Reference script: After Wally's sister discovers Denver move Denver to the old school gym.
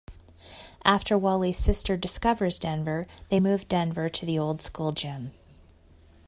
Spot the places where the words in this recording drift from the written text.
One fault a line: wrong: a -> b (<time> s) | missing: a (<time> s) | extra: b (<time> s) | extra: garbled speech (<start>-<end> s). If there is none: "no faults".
extra: they (3.3 s)